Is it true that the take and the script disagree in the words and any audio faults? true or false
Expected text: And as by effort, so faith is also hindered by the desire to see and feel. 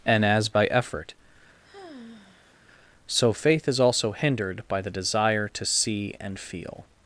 true